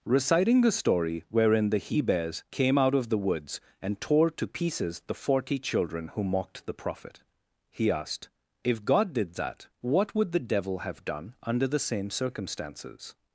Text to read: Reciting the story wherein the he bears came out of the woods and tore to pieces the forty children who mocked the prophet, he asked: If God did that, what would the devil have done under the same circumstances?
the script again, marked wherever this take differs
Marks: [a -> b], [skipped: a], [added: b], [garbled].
Reciting the story wherein the he bears came out of the woods and tore to pieces the forty children who mocked the prophet, he asked: If God did that, what would the devil have done under the same circumstances?